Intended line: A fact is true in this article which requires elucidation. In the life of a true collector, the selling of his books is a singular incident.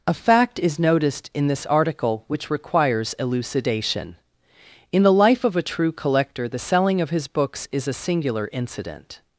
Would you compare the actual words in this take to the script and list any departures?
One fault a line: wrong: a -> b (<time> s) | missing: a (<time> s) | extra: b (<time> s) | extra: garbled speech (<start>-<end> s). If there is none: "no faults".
wrong: true -> noticed (0.8 s)